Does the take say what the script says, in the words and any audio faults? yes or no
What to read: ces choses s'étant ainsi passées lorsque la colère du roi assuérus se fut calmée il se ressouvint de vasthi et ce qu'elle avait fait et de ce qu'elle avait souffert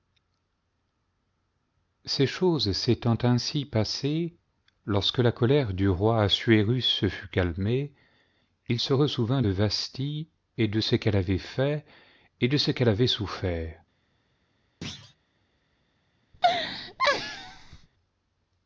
no